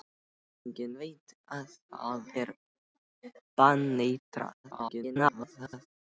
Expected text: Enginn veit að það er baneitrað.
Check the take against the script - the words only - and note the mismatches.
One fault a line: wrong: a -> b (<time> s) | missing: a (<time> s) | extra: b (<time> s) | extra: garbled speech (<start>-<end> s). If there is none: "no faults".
extra: garbled speech (4.6-5.9 s)